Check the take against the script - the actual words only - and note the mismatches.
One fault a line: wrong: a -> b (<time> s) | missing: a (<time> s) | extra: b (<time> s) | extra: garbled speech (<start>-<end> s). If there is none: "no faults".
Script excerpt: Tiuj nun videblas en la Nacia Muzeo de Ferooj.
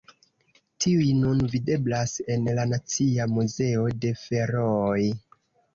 no faults